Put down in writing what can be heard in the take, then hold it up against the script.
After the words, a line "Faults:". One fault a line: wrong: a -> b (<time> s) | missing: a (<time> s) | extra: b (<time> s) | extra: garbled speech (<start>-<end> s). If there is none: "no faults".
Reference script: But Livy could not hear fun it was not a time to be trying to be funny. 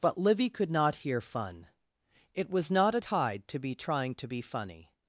But Livy could not hear fun it was not a tide to be trying to be funny.
Faults:
wrong: time -> tide (3.0 s)